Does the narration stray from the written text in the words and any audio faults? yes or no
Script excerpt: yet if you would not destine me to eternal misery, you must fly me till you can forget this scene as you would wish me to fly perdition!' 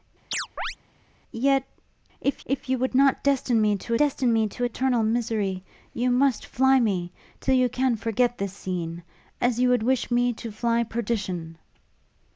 yes